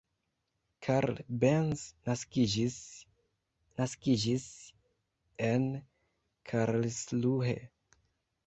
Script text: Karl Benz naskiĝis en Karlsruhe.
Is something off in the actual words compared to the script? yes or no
yes